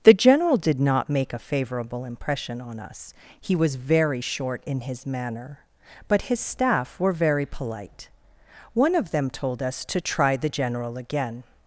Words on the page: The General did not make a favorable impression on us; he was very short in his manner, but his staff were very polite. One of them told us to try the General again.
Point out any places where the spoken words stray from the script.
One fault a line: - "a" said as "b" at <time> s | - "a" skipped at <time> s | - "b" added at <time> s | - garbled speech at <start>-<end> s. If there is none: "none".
none